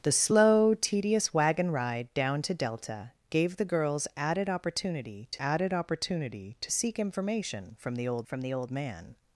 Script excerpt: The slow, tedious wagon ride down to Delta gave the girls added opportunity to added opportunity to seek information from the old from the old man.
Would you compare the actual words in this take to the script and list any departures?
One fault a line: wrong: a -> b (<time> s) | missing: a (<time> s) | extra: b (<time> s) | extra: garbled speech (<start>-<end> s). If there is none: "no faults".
no faults